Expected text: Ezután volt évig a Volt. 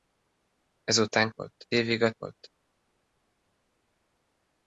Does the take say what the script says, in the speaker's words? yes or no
yes